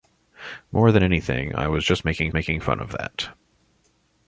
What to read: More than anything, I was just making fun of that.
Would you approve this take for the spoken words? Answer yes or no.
no